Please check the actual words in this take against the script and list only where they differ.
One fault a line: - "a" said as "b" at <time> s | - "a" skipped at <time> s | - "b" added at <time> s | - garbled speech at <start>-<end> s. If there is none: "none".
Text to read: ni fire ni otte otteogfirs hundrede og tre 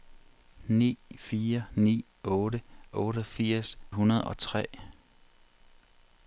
none